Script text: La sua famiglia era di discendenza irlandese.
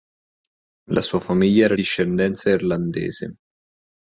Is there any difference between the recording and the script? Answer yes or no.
yes